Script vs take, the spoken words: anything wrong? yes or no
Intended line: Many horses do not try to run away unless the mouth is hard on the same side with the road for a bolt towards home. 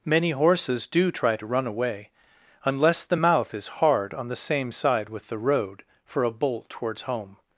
yes